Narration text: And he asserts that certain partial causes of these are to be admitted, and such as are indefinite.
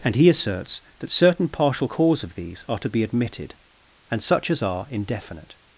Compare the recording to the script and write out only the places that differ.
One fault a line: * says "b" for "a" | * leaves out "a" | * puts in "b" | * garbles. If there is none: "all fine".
* says "cause" for "causes"